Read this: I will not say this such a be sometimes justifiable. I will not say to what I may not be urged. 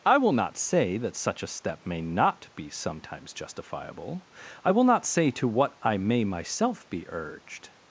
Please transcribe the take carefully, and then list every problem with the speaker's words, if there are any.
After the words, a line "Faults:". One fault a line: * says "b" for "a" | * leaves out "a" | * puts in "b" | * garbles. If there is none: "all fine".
I will not say that such a step may not be sometimes justifiable. I will not say to what I may myself be urged.
Faults:
* says "that" for "this"
* puts in "step may not"
* says "myself" for "not"